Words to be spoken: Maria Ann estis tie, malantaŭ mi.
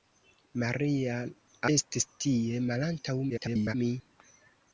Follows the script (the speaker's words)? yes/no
no